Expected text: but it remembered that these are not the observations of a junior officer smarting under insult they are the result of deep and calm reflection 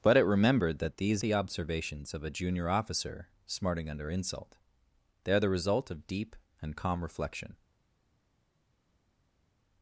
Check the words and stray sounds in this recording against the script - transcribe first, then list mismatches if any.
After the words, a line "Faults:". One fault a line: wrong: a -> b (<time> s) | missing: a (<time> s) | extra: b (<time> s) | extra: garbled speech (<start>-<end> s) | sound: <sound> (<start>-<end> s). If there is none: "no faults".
but it remembered that these the observations of a junior officer smarting under insult they are the result of deep and calm reflection
Faults:
missing: are not (1.2 s)